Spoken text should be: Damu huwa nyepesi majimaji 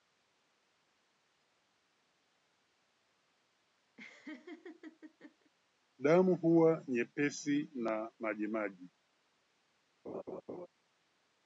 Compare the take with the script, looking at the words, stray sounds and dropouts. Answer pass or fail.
fail